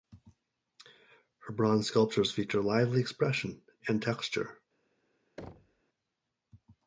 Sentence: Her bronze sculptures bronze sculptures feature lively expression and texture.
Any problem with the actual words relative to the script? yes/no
yes